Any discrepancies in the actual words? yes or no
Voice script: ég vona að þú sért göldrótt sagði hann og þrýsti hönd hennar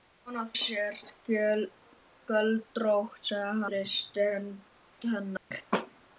yes